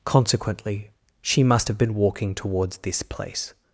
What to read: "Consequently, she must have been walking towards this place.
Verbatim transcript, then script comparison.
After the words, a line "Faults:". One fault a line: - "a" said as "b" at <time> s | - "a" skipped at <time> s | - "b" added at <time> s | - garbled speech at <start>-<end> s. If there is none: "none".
"Consequently, she must have been walking towards this place.
Faults:
none